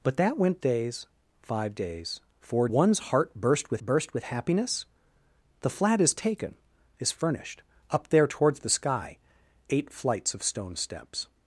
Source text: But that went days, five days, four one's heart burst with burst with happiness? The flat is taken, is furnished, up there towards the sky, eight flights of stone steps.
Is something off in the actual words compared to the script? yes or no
no